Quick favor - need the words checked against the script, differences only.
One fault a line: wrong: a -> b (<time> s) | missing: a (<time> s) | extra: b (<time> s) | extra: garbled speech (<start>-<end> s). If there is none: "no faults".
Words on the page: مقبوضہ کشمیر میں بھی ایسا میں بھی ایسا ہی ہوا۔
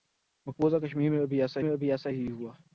no faults